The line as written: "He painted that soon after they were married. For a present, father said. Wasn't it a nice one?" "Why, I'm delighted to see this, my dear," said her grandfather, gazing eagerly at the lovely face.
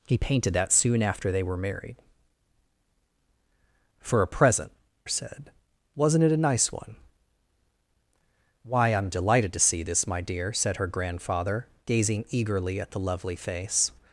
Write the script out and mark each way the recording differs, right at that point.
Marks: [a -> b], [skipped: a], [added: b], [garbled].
"He painted that soon after they were married. For a present, [skipped: father] said. Wasn't it a nice one?" "Why, I'm delighted to see this, my dear," said her grandfather, gazing eagerly at the lovely face.